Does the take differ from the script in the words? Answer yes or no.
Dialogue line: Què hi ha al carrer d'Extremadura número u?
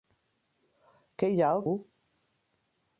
yes